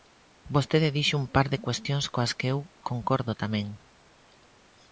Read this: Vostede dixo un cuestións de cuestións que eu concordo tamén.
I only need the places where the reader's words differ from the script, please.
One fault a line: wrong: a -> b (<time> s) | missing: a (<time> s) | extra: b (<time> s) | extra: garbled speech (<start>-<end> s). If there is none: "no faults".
wrong: cuestións -> par (1.4 s)
extra: coas (2.1 s)